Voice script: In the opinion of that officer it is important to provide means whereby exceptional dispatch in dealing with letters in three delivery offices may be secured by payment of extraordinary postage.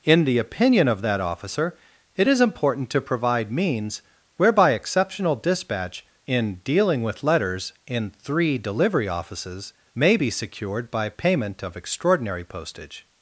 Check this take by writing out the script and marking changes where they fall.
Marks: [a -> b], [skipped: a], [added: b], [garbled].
In the opinion of that officer it is important to provide means whereby exceptional dispatch in dealing with letters in three delivery offices may be secured by payment of extraordinary postage.